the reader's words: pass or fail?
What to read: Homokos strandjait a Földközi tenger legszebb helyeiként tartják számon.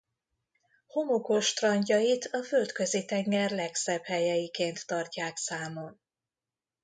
pass